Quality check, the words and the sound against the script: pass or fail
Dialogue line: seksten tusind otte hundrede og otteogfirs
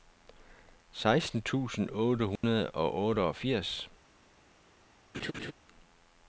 fail